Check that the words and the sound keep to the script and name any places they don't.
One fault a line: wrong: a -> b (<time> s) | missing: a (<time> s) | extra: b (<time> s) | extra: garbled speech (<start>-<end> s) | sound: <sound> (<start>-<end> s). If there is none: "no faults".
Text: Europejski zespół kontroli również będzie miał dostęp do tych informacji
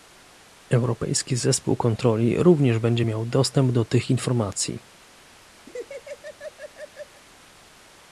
sound: laugh (5.7-7.2 s)